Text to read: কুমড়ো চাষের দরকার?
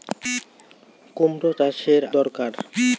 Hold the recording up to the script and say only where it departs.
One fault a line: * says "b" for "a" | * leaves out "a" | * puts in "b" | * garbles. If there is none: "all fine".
all fine